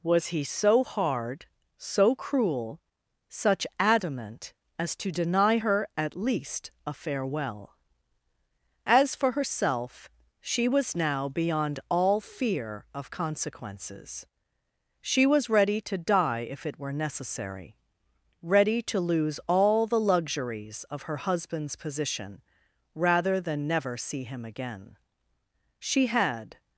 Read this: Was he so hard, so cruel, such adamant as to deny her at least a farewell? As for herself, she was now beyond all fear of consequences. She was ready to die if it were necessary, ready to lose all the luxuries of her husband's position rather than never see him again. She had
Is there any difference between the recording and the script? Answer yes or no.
no